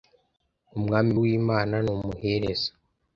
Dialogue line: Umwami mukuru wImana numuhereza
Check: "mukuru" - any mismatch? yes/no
yes